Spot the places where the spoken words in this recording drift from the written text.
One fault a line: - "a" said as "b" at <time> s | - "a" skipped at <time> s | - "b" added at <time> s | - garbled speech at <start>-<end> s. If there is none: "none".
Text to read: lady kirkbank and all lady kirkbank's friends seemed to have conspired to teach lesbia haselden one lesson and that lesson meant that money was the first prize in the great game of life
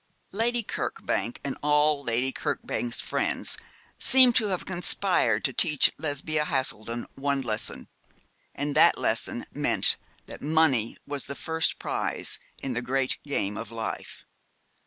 none